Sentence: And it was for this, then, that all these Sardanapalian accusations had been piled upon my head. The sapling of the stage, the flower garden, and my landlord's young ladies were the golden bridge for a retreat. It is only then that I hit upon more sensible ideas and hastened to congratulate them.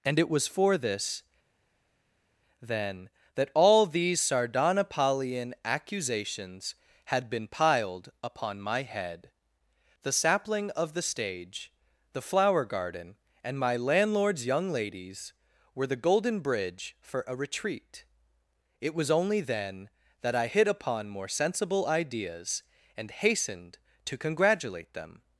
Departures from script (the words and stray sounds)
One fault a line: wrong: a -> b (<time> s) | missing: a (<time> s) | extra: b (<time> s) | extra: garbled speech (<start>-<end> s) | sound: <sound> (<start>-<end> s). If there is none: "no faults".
wrong: is -> was (19.0 s)